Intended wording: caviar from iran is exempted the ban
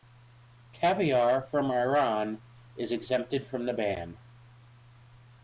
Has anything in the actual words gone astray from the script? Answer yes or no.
yes